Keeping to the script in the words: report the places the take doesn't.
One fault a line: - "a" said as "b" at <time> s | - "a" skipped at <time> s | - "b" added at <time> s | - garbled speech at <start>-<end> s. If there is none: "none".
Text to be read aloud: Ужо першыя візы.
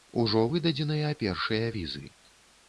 - "выдадзеныя" added at 0.5 s